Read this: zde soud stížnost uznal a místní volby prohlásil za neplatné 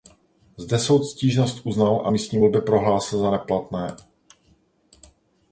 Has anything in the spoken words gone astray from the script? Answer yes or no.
no